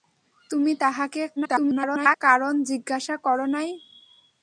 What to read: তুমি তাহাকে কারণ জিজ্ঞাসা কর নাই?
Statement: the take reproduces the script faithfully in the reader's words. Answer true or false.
false